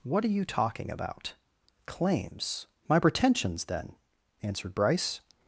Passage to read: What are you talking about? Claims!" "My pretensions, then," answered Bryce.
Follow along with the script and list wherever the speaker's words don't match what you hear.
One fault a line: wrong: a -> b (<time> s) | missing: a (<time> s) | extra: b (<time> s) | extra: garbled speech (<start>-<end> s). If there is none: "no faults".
no faults